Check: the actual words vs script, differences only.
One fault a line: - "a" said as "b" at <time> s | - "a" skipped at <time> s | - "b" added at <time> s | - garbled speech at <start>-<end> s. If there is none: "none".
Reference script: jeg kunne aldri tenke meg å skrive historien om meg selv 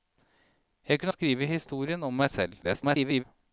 - "aldri tenke meg" skipped at 1.1 s
- garbled speech at 2.6-3.2 s